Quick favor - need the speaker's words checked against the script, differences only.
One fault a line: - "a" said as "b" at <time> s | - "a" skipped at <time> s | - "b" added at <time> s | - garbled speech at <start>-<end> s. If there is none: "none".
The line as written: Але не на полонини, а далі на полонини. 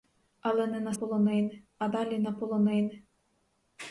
none